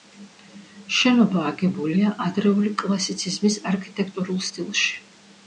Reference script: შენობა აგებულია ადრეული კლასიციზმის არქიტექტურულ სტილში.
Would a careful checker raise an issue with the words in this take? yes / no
no